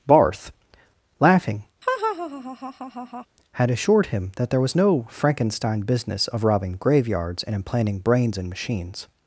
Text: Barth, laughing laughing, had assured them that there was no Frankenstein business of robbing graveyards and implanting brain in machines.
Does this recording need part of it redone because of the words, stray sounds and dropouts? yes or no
yes